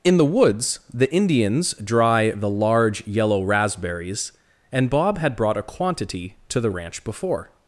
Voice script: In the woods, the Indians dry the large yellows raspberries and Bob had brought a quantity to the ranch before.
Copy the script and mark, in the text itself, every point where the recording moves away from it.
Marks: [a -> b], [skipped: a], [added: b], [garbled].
In the woods, the Indians dry the large [yellows -> yellow] raspberries and Bob had brought a quantity to the ranch before.